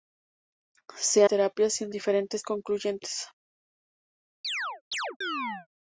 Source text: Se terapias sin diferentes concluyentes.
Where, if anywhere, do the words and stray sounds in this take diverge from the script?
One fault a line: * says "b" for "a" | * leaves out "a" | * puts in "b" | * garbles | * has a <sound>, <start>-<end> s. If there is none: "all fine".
* has a chirp, 4.4-5.7 s